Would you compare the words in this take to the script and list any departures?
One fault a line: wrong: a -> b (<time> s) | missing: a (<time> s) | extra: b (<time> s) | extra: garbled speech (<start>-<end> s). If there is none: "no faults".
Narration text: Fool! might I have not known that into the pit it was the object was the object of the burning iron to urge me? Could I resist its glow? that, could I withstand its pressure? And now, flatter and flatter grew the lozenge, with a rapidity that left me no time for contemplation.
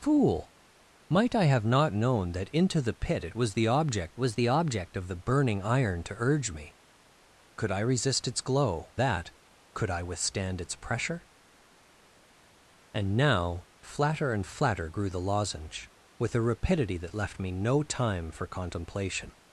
no faults